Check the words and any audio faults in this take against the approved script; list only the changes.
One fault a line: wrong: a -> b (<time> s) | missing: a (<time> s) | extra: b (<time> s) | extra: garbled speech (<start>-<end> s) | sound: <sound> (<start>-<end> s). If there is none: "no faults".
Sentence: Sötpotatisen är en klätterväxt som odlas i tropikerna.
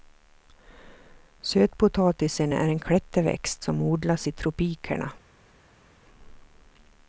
no faults